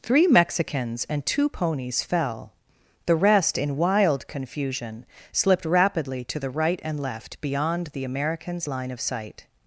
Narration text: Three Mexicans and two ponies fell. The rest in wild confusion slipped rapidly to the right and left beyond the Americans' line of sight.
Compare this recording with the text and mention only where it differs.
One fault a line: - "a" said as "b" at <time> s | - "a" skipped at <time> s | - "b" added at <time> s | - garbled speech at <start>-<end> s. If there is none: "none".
none